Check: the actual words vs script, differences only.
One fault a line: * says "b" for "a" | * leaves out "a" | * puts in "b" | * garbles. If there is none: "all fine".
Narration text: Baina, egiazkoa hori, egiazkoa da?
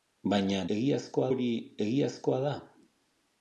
all fine